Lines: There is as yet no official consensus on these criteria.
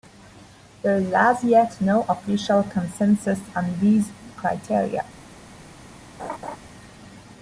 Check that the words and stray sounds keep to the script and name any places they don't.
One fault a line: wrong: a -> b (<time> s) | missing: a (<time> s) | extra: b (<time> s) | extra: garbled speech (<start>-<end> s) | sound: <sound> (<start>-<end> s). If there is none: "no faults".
sound: laugh (6.2-6.6 s)